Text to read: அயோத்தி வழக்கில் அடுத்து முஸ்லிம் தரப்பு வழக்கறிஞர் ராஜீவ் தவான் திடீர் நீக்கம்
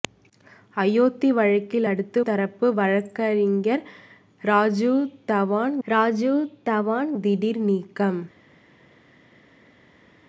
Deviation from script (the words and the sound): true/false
true